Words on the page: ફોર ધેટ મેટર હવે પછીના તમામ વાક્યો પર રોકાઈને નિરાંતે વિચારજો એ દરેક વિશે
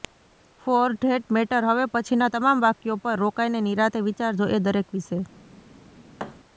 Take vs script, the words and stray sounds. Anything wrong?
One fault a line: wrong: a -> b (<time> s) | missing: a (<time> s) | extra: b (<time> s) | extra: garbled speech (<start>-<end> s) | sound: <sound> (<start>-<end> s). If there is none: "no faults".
sound: thud (6.2-6.4 s)